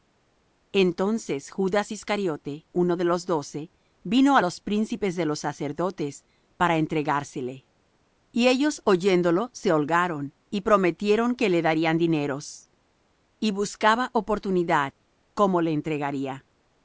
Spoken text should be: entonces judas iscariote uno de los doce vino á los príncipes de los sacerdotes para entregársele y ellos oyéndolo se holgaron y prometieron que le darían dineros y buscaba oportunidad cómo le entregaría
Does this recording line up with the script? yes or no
yes